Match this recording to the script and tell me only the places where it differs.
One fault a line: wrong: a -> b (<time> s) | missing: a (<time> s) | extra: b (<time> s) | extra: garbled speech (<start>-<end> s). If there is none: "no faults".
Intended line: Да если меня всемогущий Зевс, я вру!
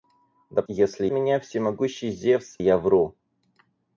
no faults